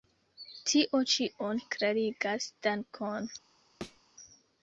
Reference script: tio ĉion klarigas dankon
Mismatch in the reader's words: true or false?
false